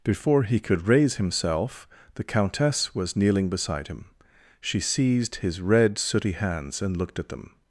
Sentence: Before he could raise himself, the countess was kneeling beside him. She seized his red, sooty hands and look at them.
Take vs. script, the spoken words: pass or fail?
fail